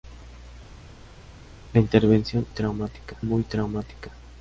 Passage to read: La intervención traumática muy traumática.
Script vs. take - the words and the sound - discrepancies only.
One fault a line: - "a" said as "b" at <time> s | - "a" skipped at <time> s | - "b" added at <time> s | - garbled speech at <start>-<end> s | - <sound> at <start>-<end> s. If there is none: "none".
none